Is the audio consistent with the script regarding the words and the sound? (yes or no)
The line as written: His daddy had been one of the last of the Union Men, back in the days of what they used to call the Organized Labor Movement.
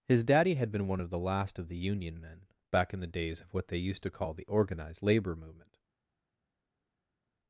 yes